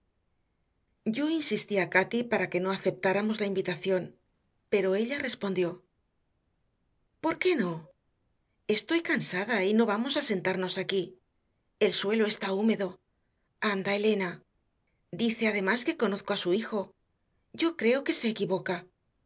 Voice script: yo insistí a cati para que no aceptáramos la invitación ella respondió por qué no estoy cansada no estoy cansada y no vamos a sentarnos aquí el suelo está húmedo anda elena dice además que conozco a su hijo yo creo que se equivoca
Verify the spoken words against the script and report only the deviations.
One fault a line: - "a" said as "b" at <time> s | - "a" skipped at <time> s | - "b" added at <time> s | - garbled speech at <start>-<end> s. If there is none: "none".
- "pero" added at 4.7 s
- "no estoy cansada" skipped at 9.6 s